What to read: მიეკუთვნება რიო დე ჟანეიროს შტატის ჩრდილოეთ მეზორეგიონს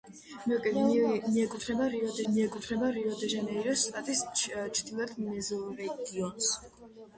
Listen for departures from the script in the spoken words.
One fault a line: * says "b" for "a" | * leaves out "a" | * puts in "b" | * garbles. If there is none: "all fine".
* puts in "მიეკუთვნება რიო დე"